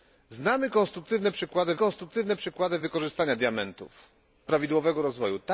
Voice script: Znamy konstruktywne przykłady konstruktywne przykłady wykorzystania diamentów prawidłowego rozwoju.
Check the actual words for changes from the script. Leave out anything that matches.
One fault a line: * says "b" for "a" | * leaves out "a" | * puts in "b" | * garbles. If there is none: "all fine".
all fine